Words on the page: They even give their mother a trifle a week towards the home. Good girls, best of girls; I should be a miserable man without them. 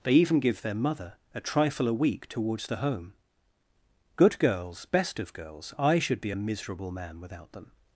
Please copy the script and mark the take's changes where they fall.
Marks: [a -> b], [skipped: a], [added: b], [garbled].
They even give their mother a trifle a week towards the home. Good girls, best of girls; I should be a miserable man without them.